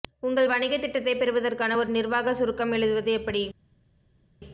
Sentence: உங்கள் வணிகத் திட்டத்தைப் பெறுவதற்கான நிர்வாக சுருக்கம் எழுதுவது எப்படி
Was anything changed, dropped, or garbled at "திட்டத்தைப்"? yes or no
no